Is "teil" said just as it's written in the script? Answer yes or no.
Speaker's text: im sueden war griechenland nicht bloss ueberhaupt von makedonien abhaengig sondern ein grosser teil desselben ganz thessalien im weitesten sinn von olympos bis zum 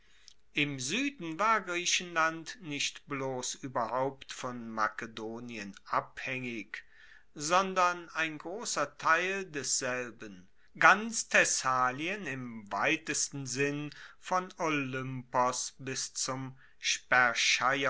yes